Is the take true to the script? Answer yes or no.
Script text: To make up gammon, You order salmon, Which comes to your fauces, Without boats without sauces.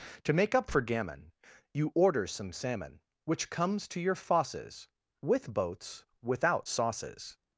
no